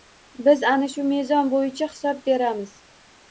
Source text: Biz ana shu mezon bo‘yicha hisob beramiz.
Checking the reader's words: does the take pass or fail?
pass